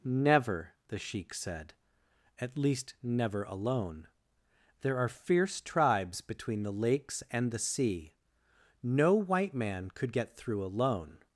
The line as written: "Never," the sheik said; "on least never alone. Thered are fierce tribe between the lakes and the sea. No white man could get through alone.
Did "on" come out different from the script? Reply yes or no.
yes